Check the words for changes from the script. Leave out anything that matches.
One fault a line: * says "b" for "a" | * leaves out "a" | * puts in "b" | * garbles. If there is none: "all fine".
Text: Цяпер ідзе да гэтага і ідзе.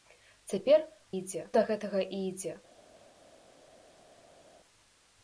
all fine